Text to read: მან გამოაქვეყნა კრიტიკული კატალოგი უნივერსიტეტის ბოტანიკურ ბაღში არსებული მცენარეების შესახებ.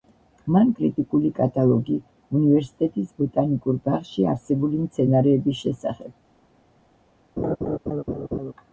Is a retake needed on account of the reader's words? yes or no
yes